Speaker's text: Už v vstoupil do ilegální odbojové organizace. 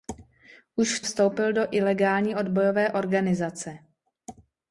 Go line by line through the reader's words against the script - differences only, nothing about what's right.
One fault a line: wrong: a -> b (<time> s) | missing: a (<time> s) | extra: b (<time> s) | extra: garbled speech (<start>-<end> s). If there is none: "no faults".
no faults